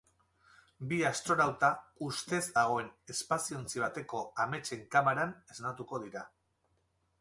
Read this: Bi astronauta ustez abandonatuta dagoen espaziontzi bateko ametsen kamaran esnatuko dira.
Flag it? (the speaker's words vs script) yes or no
yes